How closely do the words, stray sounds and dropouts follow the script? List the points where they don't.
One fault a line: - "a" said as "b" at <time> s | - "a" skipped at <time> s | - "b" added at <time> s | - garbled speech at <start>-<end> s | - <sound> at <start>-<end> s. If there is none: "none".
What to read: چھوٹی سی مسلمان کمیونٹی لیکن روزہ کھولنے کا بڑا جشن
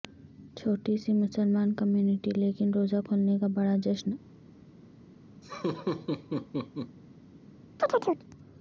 - laugh at 5.4-7.0 s
- chirp at 7.8-8.3 s